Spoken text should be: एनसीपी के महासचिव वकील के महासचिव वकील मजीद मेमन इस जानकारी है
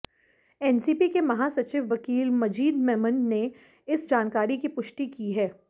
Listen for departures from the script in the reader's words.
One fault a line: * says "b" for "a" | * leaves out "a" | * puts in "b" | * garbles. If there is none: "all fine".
* leaves out "के महासचिव वकील"
* puts in "ने"
* puts in "की पुष्टि की"